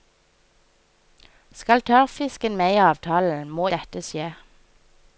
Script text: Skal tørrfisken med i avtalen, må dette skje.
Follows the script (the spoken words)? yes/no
yes